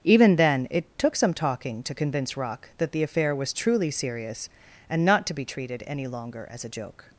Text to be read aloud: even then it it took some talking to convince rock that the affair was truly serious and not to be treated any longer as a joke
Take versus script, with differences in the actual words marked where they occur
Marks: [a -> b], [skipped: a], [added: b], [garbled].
even then it [skipped: it] took some talking to convince rock that the affair was truly serious and not to be treated any longer as a joke